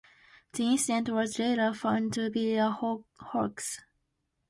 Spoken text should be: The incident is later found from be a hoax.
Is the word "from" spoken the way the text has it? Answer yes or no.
no